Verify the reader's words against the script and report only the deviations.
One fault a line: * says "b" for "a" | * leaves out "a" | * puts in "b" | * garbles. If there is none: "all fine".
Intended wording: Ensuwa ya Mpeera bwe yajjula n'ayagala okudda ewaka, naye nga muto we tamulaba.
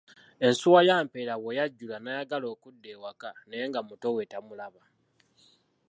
all fine